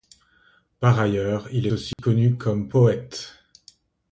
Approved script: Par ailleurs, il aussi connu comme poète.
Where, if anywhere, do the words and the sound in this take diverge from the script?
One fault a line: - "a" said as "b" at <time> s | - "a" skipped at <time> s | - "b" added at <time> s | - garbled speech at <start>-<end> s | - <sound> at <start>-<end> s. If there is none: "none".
- dropout at 1.9-2.0 s